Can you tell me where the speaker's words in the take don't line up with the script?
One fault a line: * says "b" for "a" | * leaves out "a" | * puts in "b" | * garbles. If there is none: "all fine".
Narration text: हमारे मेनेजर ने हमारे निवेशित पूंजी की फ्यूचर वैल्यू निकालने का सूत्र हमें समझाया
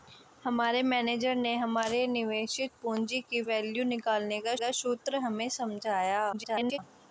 * leaves out "फ्यूचर"
* puts in "का"
* garbles